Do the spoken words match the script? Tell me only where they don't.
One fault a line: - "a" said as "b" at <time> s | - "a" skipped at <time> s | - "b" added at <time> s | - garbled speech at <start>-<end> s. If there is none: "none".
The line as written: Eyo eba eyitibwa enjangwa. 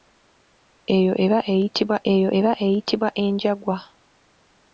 - "eyo eba eyitibwa" added at 2.1 s